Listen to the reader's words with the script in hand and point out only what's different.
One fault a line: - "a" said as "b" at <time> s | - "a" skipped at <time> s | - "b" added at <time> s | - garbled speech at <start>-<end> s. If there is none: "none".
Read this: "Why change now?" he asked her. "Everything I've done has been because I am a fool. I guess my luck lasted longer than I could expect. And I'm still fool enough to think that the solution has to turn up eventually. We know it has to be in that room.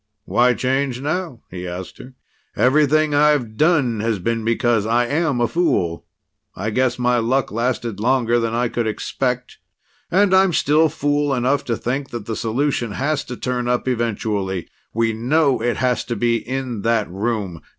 none